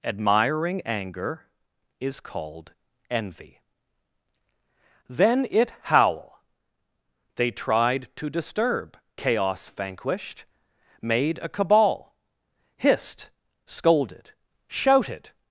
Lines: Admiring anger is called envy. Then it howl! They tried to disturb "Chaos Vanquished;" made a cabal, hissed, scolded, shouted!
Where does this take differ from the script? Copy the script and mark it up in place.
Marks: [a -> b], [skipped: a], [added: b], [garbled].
Admiring anger is called envy. Then it howl! They tried to disturb "Chaos Vanquished;" made a cabal, hissed, scolded, shouted!